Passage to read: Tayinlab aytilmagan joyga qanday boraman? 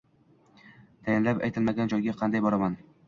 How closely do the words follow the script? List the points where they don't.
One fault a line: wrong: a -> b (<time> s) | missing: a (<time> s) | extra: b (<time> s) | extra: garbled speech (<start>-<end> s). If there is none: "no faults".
no faults